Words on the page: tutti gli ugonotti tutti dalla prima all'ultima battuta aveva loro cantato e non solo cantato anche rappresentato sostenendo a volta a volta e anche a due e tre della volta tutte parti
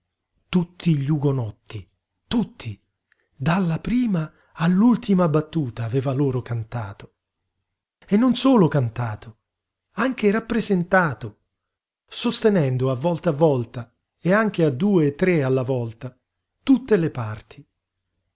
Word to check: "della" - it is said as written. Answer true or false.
false